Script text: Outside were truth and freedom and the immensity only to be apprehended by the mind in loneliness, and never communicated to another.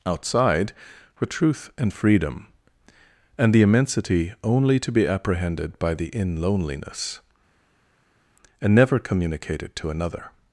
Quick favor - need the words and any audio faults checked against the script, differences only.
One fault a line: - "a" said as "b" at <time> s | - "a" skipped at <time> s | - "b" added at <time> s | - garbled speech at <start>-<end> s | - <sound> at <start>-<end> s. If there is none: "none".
- "mind" skipped at 6.1 s